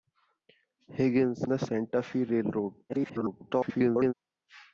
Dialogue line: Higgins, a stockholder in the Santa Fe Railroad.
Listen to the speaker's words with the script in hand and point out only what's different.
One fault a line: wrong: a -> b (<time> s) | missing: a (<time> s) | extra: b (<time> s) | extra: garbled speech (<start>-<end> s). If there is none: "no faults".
missing: a stockholder in (1.4 s)
extra: garbled speech (2.9-4.1 s)